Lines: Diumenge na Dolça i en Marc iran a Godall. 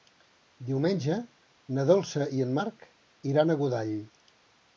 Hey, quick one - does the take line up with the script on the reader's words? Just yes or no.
yes